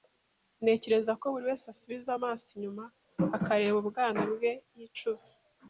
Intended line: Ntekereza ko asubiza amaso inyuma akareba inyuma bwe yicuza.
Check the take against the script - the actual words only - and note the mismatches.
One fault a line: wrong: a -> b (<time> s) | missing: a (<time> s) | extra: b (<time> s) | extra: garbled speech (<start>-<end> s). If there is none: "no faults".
extra: buri wese (1.3 s)
wrong: inyuma -> ubwana (3.8 s)